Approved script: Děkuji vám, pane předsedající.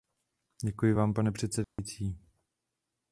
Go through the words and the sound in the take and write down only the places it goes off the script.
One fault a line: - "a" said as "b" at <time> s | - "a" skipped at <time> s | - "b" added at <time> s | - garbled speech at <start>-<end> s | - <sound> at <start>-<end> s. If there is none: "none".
- dropout at 1.6-1.8 s